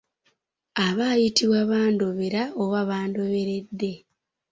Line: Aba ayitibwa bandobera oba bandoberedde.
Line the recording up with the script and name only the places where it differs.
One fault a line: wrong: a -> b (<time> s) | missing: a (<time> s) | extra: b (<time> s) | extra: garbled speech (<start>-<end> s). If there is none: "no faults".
no faults